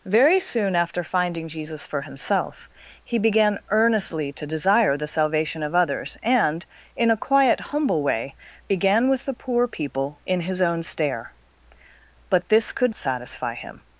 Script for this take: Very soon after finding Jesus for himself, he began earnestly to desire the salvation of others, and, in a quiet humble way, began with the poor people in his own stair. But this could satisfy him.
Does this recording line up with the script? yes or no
yes